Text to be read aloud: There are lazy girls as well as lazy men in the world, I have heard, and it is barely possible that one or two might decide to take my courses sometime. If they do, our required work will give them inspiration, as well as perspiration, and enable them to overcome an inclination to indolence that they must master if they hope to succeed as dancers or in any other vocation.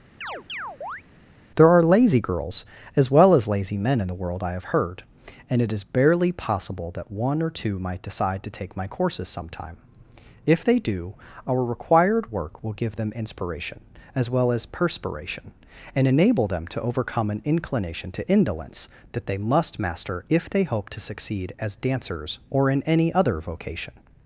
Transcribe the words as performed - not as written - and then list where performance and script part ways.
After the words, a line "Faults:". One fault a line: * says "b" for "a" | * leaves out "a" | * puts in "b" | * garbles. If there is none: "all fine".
There are lazy girls as well as lazy men in the world, I have heard, and it is barely possible that one or two might decide to take my courses sometime. If they do, our required work will give them inspiration, as well as perspiration, and enable them to overcome an inclination to indolence that they must master if they hope to succeed as dancers or in any other vocation.
Faults:
all fine